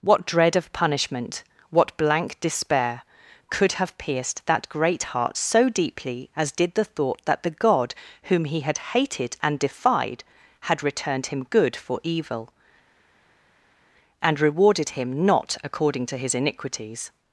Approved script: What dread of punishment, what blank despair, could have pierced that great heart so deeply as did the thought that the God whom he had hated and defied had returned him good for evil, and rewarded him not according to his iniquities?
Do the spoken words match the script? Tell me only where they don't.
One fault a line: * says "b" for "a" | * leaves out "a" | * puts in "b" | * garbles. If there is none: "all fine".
all fine